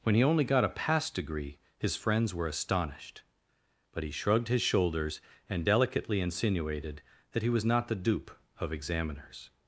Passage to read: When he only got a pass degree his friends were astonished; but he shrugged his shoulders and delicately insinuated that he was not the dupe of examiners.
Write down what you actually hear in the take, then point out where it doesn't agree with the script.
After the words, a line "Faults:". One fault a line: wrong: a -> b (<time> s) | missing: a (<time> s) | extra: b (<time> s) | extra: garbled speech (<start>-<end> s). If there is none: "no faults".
When he only got a pass degree his friends were astonished; but he shrugged his shoulders and delicately insinuated that he was not the dupe of examiners.
Faults:
no faults